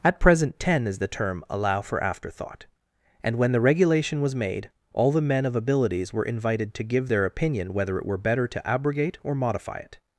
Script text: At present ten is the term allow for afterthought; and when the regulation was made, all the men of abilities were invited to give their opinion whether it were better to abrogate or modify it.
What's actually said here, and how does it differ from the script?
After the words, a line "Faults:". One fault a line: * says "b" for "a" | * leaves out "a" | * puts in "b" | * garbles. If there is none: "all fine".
At present ten is the term allow for afterthought; and when the regulation was made, all the men of abilities were invited to give their opinion whether it were better to abrogate or modify it.
Faults:
all fine